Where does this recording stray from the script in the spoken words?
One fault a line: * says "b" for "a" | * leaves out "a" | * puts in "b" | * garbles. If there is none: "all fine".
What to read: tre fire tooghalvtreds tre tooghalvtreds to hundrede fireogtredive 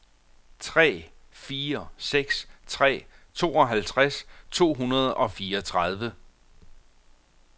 * says "seks" for "tooghalvtreds"
* puts in "og"